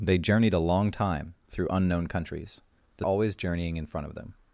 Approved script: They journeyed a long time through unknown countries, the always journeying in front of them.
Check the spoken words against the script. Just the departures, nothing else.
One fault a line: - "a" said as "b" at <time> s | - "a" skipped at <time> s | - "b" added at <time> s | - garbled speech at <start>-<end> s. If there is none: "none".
none